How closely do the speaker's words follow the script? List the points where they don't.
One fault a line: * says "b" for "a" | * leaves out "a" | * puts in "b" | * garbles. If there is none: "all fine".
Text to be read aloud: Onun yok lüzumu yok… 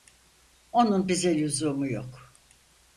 * says "bize" for "yok"